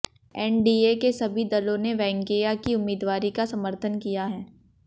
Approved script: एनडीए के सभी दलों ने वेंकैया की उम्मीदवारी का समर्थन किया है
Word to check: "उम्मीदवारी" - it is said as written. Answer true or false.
true